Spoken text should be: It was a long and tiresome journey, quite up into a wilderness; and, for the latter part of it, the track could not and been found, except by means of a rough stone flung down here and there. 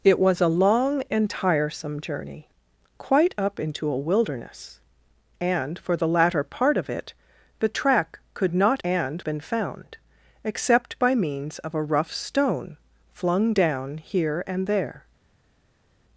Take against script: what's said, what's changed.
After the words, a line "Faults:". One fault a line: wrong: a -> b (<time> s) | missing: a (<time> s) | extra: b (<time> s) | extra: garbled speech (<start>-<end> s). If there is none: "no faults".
It was a long and tiresome journey, quite up into a wilderness; and, for the latter part of it, the track could not and been found, except by means of a rough stone flung down here and there.
Faults:
no faults